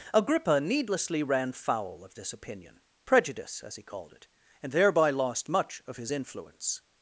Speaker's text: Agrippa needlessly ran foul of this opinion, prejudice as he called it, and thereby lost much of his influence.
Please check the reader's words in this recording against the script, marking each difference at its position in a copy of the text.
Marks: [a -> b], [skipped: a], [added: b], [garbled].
Agrippa needlessly ran foul of this opinion, prejudice as he called it, and thereby lost much of his influence.